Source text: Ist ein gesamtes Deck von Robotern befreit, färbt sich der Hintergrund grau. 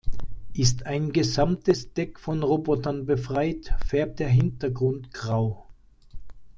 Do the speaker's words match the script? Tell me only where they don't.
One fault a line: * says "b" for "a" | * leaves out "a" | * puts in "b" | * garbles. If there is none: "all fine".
* leaves out "sich"